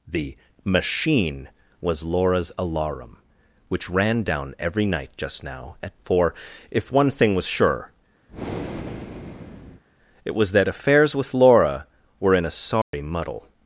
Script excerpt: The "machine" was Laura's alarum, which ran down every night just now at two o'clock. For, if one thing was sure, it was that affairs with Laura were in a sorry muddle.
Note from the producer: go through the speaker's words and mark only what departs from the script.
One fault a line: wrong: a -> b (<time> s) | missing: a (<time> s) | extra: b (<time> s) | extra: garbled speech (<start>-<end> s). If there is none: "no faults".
missing: two o'clock (6.0 s)